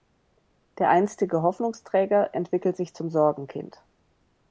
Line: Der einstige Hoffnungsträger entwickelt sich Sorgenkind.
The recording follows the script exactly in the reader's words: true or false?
false